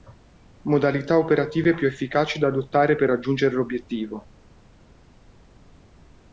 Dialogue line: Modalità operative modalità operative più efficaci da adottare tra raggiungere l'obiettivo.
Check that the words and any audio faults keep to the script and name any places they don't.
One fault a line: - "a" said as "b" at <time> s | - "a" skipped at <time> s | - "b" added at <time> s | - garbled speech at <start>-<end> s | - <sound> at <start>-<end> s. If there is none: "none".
- "modalità operative" skipped at 1.8 s
- "tra" said as "per" at 3.0 s